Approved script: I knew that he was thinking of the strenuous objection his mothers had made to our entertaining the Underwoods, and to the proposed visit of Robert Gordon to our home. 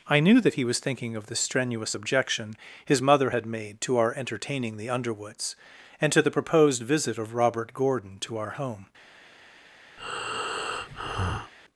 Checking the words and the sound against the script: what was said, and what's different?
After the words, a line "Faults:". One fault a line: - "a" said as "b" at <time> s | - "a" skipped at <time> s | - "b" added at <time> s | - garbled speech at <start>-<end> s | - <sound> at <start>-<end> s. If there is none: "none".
I knew that he was thinking of the strenuous objection his mother had made to our entertaining the Underwoods, and to the proposed visit of Robert Gordon to our home.
Faults:
- "mothers" said as "mother" at 3.0 s
- breath at 10.0-11.5 s